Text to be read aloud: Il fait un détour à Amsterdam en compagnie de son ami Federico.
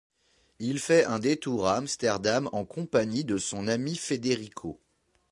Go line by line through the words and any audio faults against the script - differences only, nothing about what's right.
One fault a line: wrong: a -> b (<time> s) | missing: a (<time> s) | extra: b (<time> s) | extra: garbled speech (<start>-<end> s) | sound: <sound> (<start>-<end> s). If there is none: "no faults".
no faults